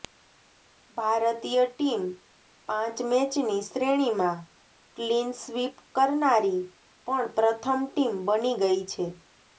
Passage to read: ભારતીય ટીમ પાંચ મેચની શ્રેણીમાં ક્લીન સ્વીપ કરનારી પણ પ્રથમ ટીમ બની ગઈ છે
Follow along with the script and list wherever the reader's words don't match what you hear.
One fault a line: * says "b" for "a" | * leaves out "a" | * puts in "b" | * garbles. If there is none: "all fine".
all fine